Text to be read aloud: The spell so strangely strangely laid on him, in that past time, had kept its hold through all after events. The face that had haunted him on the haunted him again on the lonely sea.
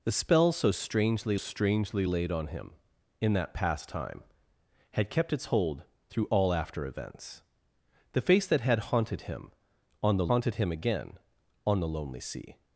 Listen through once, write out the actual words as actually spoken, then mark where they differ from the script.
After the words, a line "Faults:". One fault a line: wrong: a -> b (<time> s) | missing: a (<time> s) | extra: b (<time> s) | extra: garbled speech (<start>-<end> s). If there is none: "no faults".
The spell so strangely strangely laid on him, in that past time, had kept its hold through all after events. The face that had haunted him on the haunted him again on the lonely sea.
Faults:
no faults